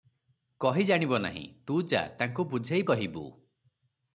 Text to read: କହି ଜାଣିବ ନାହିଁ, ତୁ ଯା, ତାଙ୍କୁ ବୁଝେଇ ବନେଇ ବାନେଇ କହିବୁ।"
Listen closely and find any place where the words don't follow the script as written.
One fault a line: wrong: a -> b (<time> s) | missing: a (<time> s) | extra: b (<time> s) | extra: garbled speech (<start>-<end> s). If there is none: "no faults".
missing: ବନେଇ ବାନେଇ (2.9 s)